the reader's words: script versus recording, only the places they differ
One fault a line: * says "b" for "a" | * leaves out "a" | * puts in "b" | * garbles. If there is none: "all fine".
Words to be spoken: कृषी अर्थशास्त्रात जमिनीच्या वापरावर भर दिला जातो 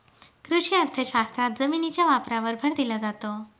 all fine